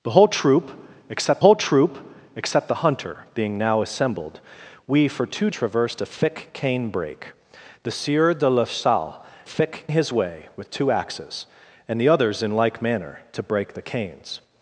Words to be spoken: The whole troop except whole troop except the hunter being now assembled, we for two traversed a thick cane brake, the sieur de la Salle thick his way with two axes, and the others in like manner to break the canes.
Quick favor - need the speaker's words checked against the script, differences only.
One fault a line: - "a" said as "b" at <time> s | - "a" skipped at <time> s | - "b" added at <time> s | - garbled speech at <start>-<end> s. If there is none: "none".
none